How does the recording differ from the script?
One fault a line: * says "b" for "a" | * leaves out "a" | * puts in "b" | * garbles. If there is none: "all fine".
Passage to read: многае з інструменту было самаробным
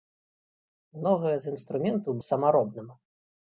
* leaves out "было"